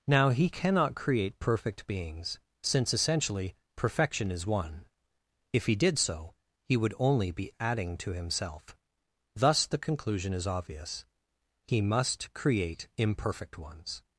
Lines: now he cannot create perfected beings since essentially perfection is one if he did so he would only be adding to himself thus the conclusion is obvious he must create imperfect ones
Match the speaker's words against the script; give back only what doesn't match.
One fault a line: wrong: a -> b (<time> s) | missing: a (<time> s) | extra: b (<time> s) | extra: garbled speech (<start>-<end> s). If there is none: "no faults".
wrong: perfected -> perfect (1.4 s)